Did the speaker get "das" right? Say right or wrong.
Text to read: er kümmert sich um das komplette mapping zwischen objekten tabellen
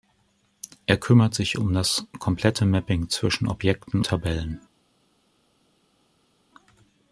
right